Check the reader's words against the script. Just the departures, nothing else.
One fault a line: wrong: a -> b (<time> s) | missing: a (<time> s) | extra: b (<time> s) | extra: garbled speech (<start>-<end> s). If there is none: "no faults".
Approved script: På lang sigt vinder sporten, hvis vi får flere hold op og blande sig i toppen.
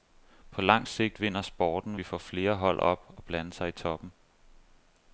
missing: hvis (1.9 s)